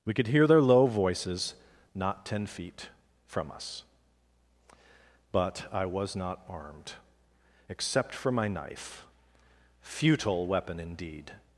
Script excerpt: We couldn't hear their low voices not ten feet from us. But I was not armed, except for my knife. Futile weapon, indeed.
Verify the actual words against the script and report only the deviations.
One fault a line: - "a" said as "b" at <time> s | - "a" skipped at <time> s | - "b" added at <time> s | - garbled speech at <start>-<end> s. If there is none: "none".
- "couldn't" said as "could" at 0.1 s